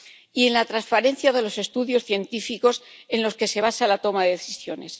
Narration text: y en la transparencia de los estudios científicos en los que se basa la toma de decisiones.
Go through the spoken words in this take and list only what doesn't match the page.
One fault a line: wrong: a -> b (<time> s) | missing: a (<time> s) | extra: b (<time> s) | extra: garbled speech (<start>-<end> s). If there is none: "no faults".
no faults